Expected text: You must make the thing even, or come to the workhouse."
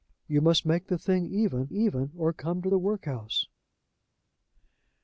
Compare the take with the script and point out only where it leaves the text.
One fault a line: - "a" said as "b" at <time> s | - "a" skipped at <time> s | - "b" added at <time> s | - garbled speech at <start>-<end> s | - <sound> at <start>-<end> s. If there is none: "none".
- "even" added at 1.7 s